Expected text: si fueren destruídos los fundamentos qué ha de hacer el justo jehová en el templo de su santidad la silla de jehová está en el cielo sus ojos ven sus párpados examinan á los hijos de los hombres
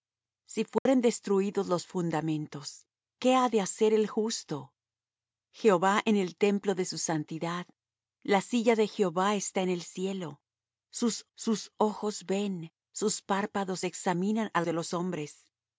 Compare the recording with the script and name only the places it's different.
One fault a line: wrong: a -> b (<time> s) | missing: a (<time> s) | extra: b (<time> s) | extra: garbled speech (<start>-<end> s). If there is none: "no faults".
extra: sus (11.3 s)
missing: los hijos (14.6 s)